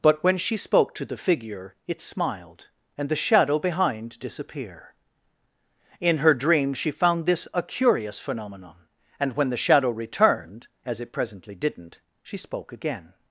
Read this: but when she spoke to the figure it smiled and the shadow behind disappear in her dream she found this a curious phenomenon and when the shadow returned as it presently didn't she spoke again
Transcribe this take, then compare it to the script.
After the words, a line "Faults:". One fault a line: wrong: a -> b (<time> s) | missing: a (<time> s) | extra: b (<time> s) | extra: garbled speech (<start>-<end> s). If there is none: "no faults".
but when she spoke to the figure it smiled and the shadow behind disappear in her dream she found this a curious phenomenon and when the shadow returned as it presently didn't she spoke again
Faults:
no faults